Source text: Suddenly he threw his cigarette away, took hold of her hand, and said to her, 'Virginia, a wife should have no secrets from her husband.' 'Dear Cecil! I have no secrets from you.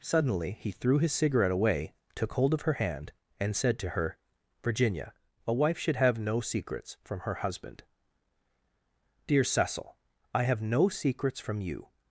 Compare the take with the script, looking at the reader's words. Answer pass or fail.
pass